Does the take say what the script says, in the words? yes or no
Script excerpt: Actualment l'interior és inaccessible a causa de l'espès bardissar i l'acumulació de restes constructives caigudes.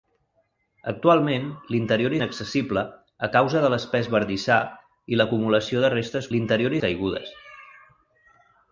no